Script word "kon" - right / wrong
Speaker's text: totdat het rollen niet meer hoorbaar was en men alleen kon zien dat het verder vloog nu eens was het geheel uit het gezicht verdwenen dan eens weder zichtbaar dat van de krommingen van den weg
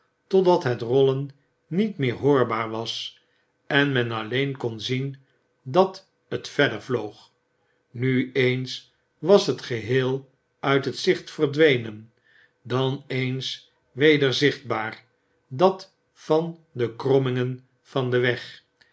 right